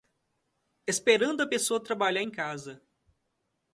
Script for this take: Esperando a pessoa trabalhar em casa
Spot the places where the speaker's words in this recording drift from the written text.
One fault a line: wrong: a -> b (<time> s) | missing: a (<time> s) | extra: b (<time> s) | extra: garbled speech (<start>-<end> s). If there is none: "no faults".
no faults